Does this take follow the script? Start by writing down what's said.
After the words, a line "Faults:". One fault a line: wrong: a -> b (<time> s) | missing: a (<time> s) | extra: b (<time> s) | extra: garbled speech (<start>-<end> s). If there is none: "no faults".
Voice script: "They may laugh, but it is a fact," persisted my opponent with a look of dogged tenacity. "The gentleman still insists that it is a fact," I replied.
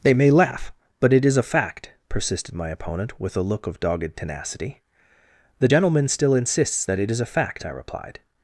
"They may laugh, but it is a fact," persisted my opponent with a look of dogged tenacity. "The gentleman still insists that it is a fact," I replied.
Faults:
no faults